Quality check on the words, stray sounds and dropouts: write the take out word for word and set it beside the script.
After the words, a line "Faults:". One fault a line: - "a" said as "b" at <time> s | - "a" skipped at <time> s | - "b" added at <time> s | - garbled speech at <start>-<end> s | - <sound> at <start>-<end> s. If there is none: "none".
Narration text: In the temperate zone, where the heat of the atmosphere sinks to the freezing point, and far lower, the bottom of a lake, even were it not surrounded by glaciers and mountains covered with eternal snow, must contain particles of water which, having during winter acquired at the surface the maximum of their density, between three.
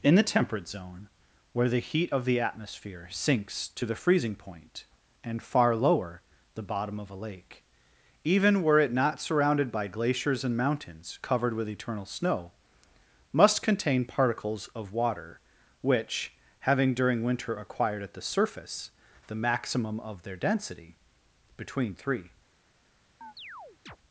In the temperate zone, where the heat of the atmosphere sinks to the freezing point, and far lower, the bottom of a lake, even were it not surrounded by glaciers and mountains covered with eternal snow, must contain particles of water which, having during winter acquired at the surface the maximum of their density, between three.
Faults:
- chirp at 23.2-24.0 s